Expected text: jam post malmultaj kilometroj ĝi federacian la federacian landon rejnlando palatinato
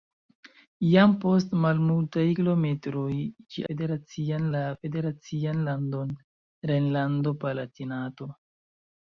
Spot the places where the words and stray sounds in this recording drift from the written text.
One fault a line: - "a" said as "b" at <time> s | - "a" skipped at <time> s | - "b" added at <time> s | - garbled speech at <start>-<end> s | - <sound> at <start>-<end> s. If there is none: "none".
none